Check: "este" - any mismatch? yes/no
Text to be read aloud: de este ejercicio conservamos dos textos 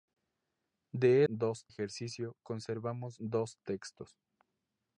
yes